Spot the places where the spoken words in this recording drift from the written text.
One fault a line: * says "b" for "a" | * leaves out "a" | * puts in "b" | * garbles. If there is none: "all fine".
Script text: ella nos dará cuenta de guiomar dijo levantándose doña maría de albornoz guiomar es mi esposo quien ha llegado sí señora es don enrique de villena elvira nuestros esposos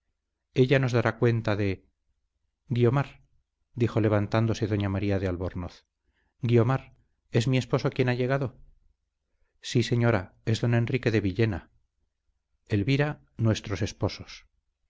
all fine